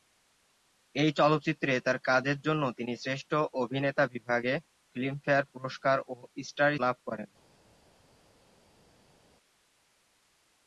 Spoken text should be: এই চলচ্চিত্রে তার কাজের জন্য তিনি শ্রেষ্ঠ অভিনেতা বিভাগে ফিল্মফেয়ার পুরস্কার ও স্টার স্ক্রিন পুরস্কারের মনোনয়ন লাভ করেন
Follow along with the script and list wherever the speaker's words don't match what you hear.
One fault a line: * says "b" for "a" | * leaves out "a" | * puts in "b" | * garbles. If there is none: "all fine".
* leaves out "স্ক্রিন পুরস্কারের মনোনয়ন"